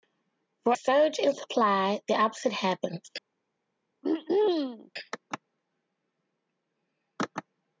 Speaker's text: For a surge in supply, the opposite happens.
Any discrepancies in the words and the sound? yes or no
yes